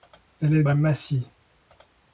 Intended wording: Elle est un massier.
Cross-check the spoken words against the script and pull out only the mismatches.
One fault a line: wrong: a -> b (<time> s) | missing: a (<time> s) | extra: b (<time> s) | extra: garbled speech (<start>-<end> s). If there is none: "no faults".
no faults